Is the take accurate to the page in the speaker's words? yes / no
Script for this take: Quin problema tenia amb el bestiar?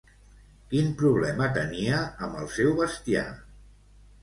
no